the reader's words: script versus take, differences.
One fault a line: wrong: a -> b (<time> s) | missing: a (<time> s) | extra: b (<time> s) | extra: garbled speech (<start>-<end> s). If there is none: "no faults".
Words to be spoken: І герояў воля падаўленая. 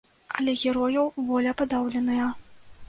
wrong: І -> Але (0.4 s)